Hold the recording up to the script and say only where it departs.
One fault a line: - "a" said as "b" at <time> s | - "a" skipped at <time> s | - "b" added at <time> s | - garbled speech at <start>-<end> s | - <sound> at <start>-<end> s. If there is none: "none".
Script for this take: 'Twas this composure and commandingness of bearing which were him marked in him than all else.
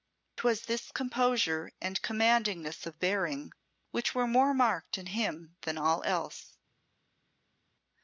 - "him" said as "more" at 4.2 s